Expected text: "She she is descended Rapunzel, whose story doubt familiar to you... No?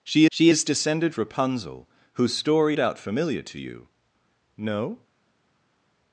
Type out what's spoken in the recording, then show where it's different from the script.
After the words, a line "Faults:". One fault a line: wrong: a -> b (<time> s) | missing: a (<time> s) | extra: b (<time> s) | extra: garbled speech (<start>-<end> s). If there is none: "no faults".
"She she is descended Rapunzel, whose story doubt familiar to you... No?
Faults:
no faults